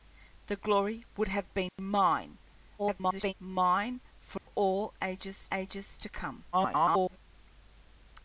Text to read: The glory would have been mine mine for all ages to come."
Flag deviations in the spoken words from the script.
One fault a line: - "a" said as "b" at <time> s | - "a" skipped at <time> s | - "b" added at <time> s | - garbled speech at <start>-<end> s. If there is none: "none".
- garbled speech at 2.8-3.3 s
- "ages" added at 5.5 s
- garbled speech at 6.5-7.2 s